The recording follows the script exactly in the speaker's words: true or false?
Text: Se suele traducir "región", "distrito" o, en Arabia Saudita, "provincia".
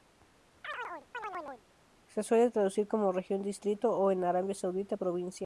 false